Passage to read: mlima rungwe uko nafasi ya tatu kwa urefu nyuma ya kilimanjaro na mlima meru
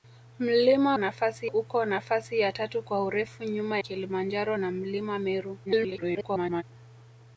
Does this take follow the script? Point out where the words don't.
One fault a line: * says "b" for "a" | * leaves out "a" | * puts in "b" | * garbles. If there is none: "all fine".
* says "nafasi" for "rungwe"
* leaves out "ya"
* garbles